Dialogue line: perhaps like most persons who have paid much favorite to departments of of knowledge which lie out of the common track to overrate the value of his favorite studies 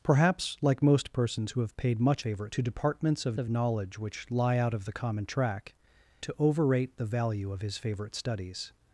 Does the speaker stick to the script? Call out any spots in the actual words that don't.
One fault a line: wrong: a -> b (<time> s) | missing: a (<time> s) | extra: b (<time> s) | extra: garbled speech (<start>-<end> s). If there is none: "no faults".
no faults